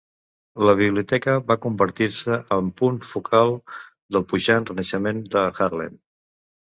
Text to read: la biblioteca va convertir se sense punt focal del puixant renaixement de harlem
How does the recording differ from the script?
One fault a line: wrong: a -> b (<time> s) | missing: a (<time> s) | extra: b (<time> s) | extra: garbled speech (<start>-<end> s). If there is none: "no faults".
wrong: sense -> en (2.6 s)